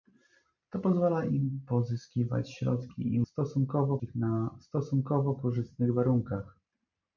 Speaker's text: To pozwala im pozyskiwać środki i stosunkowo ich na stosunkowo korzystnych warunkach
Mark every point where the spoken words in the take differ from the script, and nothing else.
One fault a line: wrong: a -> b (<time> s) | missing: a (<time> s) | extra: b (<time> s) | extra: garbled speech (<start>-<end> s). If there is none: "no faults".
no faults